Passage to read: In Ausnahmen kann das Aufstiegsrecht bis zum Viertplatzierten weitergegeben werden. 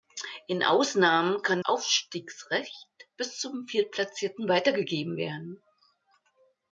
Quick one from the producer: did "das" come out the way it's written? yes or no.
no